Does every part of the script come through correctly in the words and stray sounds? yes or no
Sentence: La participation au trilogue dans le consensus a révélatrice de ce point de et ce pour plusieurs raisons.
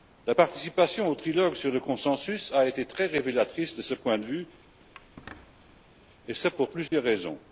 no